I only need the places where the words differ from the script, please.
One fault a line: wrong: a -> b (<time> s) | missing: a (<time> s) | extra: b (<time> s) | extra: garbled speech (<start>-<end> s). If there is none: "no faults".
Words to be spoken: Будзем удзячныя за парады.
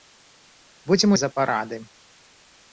missing: удзячныя (1.1 s)